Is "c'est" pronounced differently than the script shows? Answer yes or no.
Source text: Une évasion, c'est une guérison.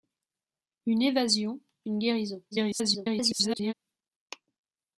yes